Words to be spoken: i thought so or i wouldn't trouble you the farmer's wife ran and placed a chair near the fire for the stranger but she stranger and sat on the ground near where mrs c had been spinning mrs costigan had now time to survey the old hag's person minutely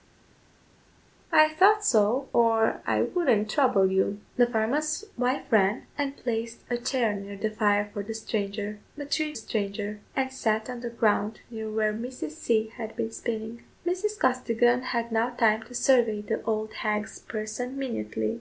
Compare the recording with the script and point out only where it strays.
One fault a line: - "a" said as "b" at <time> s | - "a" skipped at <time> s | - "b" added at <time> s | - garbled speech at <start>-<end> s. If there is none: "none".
none